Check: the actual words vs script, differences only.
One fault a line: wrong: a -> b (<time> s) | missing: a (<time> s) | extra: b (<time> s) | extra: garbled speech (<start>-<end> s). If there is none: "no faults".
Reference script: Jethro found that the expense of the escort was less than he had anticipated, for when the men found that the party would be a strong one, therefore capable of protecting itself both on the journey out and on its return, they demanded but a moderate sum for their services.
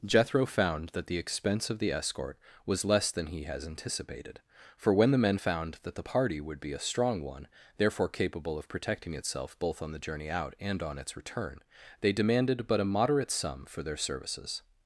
wrong: had -> has (3.4 s)